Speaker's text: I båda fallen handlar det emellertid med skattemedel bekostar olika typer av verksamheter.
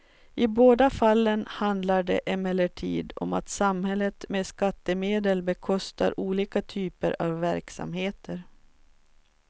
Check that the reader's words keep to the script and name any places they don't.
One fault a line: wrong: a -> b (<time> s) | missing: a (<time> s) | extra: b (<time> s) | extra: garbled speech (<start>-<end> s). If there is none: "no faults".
extra: om att samhället (3.1 s)